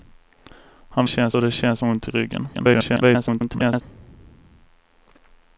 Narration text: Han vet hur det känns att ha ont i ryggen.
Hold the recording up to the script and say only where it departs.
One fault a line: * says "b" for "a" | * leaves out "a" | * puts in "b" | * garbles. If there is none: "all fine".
* says "känns" for "vet"
* leaves out "att"
* garbles